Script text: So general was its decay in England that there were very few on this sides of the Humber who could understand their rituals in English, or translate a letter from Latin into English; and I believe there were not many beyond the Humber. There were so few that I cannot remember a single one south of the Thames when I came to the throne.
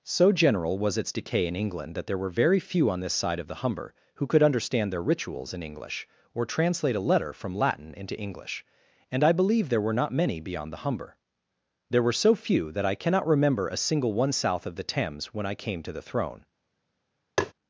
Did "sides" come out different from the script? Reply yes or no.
yes